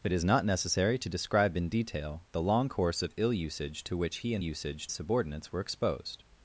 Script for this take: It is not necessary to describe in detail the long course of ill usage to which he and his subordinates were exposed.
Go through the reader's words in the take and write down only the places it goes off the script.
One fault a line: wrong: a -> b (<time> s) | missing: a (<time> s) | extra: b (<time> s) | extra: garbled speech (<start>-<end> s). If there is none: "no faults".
wrong: his -> usage (4.4 s)